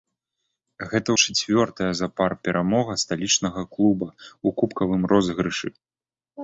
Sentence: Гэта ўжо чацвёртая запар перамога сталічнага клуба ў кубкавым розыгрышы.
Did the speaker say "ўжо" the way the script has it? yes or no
no